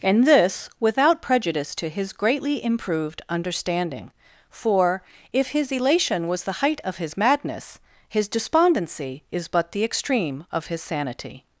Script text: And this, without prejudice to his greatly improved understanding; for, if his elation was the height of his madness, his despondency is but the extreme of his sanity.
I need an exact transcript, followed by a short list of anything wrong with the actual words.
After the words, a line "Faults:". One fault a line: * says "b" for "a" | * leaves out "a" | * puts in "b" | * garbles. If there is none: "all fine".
And this, without prejudice to his greatly improved understanding; for, if his elation was the height of his madness, his despondency is but the extreme of his sanity.
Faults:
all fine